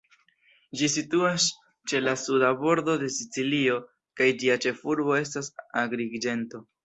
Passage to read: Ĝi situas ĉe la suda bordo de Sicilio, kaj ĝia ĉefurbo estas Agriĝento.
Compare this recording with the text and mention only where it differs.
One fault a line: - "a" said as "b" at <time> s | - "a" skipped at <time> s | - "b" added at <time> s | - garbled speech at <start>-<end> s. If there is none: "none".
none